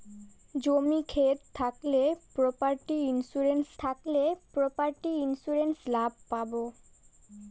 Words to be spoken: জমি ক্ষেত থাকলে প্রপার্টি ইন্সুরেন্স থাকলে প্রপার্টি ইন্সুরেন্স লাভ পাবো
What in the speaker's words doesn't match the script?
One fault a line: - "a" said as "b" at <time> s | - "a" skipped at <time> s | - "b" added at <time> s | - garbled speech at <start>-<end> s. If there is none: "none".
none